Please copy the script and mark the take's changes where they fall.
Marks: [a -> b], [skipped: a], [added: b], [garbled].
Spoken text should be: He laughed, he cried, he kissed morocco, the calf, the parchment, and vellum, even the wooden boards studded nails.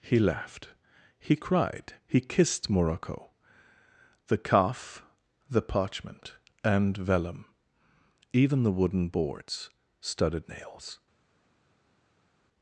He laughed, he cried, he kissed morocco, the calf, the parchment, and vellum, even the wooden boards studded nails.